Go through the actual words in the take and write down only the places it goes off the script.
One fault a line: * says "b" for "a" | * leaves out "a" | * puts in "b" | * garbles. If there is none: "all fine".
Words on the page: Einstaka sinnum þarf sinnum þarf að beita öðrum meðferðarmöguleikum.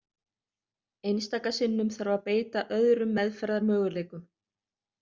* leaves out "sinnum þarf"